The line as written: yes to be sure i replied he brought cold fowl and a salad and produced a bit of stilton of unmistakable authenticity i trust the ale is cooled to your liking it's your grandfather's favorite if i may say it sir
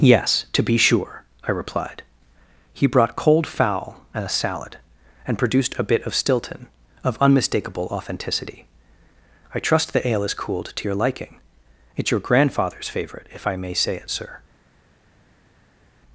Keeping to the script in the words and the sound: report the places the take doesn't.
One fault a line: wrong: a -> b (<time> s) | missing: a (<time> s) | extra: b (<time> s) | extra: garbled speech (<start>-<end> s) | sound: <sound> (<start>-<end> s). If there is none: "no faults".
no faults